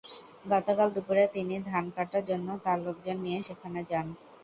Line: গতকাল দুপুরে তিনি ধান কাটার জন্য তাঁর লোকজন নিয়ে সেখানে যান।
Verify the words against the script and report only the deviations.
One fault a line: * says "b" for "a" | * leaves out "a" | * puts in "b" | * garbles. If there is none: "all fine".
all fine